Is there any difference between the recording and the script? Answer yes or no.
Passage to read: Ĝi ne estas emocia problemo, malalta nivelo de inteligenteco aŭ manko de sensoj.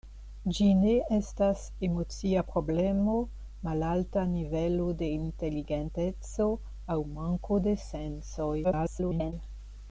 yes